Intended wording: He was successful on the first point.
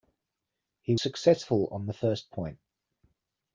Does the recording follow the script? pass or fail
fail